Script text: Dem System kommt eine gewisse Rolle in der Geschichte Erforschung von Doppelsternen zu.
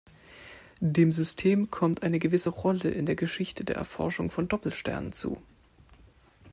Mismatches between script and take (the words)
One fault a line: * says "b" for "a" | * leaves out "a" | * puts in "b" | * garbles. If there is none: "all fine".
* puts in "der"